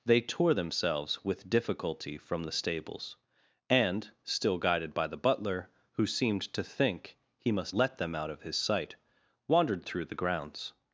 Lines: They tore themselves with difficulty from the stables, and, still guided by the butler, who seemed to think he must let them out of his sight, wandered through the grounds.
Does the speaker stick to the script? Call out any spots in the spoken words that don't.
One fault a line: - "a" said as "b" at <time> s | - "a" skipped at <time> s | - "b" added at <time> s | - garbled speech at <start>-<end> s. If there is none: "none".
none